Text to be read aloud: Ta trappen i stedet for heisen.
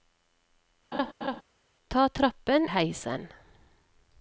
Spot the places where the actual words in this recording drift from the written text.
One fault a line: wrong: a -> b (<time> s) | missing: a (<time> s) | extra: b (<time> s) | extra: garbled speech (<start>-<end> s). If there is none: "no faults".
missing: i stedet for (2.7 s)